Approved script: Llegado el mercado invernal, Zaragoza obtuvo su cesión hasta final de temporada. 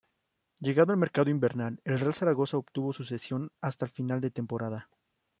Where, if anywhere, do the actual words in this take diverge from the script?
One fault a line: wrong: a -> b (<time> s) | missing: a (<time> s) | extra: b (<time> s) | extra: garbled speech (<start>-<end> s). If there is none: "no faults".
extra: el Real (1.9 s)